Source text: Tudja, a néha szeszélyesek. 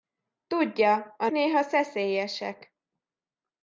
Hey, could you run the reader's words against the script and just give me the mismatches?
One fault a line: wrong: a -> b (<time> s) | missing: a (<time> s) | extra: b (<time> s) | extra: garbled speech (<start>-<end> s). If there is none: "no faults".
no faults